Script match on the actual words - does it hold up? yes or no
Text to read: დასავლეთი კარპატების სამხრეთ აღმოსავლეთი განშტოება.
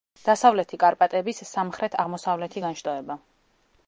yes